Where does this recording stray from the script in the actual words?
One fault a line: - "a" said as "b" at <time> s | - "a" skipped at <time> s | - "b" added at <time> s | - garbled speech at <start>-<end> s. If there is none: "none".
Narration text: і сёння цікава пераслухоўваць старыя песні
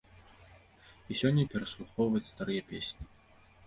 - "цікава" skipped at 1.4 s